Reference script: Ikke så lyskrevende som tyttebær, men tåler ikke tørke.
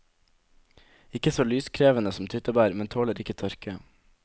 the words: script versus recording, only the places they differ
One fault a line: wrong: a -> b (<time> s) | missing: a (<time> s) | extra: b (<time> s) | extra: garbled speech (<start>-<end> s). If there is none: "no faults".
no faults